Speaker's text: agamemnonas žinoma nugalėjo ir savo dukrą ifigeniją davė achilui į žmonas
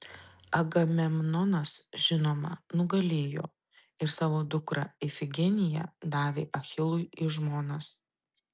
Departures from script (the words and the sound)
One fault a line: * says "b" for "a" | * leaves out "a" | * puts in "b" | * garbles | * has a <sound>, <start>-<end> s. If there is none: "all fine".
all fine